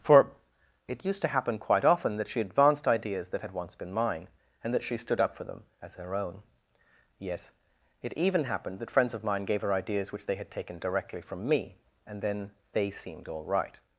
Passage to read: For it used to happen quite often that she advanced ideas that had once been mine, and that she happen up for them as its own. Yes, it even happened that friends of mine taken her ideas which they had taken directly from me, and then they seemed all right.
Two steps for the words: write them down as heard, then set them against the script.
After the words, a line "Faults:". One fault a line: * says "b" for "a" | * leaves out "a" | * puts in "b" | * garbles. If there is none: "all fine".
For it used to happen quite often that she advanced ideas that had once been mine, and that she stood up for them as her own. Yes, it even happened that friends of mine gave her ideas which they had taken directly from me, and then they seemed all right.
Faults:
* says "stood" for "happen"
* says "her" for "its"
* says "gave" for "taken"